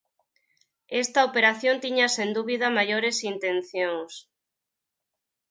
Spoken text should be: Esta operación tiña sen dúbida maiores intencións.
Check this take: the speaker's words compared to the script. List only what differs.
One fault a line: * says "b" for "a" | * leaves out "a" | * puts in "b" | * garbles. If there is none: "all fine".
all fine